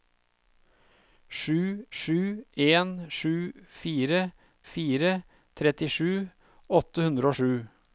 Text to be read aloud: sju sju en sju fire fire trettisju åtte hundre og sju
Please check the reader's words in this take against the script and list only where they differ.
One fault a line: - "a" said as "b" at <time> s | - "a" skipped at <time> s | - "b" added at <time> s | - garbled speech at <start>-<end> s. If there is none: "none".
none